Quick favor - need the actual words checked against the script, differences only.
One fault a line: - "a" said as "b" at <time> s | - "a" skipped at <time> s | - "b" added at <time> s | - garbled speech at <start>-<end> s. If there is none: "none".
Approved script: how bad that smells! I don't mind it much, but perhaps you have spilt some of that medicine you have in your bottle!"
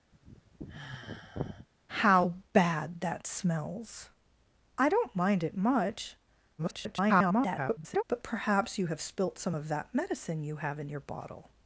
- garbled speech at 6.6-8.0 s